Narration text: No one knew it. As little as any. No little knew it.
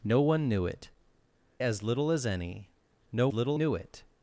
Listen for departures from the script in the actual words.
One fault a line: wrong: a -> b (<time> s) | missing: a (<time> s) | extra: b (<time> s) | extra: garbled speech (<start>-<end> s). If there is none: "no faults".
no faults